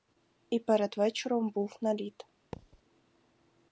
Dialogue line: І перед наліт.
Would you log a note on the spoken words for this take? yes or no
yes